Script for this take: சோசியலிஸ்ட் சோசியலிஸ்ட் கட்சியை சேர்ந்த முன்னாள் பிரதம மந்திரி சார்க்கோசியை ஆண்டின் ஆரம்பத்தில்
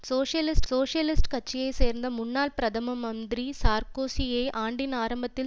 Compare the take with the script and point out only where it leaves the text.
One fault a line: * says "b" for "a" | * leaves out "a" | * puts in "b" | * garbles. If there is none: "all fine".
all fine